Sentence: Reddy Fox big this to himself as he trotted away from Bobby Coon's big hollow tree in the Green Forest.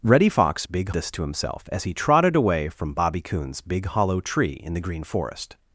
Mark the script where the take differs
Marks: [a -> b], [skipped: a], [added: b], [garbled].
Reddy Fox big this to himself as he trotted away from Bobby Coon's big hollow tree in the Green Forest.